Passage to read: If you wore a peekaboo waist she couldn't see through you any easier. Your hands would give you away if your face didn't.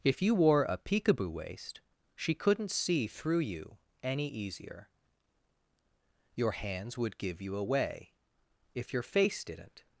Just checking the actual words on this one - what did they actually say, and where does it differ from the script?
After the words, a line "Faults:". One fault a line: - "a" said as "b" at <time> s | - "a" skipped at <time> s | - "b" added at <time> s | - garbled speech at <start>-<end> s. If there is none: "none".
If you wore a peekaboo waist she couldn't see through you any easier. Your hands would give you away if your face didn't.
Faults:
none